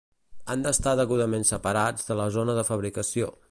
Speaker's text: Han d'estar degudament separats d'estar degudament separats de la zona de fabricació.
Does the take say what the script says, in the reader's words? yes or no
no